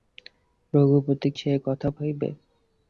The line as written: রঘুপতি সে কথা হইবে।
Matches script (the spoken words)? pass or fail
pass